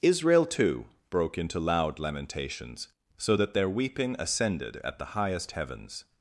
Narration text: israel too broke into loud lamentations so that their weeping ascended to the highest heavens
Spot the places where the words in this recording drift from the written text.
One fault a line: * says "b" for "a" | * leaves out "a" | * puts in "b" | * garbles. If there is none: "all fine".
* says "at" for "to"